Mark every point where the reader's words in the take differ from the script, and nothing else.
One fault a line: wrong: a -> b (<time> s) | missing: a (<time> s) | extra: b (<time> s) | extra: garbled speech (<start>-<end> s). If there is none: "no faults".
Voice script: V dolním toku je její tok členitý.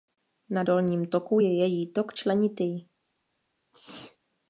wrong: V -> Na (0.5 s)